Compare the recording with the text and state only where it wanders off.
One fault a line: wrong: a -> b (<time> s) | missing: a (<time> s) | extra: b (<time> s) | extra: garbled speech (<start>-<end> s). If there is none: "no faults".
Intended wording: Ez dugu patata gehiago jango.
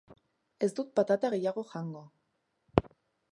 wrong: dugu -> dut (0.8 s)